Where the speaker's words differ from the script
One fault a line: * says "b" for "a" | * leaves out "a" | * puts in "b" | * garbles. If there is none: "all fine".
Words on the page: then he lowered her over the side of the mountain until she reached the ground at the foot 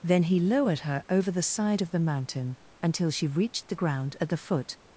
all fine